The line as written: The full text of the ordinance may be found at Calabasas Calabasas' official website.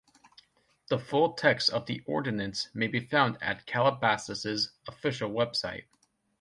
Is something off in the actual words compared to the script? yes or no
yes